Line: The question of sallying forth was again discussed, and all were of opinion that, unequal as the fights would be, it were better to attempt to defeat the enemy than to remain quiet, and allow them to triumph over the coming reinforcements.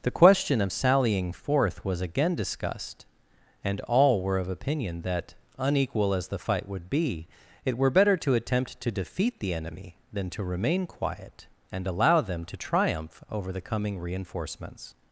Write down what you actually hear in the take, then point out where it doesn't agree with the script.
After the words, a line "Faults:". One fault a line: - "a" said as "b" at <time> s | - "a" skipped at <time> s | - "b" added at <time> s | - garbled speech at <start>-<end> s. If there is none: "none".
The question of sallying forth was again discussed, and all were of opinion that, unequal as the fight would be, it were better to attempt to defeat the enemy than to remain quiet, and allow them to triumph over the coming reinforcements.
Faults:
- "fights" said as "fight" at 6.4 s